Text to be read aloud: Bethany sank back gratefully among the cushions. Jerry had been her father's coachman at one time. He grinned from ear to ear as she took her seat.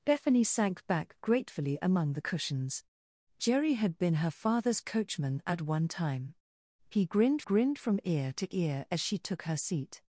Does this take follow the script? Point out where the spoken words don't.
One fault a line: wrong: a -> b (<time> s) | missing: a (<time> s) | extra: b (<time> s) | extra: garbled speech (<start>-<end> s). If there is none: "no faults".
extra: grinned (7.4 s)